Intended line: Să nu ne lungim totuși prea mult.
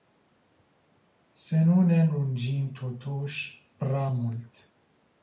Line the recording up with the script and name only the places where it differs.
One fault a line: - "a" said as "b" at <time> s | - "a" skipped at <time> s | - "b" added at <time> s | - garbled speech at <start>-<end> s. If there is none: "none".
none